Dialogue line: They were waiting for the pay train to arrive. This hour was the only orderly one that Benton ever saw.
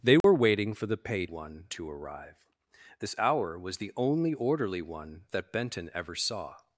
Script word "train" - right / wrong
wrong